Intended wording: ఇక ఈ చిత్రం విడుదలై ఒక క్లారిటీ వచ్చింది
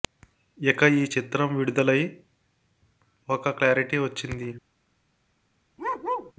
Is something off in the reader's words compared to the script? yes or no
no